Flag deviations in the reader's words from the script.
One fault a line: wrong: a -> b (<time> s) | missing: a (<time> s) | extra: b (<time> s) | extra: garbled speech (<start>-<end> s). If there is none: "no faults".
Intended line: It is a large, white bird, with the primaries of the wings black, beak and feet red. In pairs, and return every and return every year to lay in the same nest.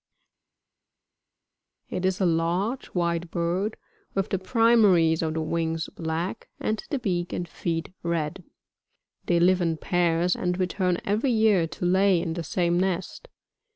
extra: and the (6.6 s)
extra: They live (9.3 s)
missing: and return every (11.3 s)